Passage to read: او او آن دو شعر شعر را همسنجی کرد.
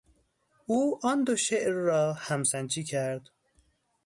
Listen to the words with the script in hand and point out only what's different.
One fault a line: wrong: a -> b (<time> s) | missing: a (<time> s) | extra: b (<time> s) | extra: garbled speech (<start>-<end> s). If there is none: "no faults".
missing: او (1.0 s)
missing: شعر (1.7 s)